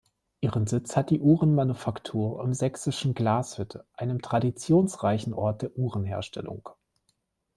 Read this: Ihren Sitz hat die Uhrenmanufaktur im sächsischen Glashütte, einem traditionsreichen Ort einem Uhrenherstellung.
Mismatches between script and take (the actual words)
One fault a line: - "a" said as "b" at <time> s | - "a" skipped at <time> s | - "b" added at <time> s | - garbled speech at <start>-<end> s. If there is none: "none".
- "einem" said as "der" at 5.6 s